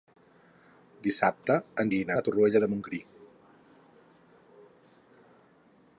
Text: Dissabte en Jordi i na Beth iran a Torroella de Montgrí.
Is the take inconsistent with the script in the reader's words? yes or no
yes